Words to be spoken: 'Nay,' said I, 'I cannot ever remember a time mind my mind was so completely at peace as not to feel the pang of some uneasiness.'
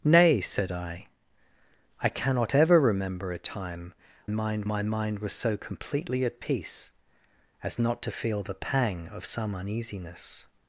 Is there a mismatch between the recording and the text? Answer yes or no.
no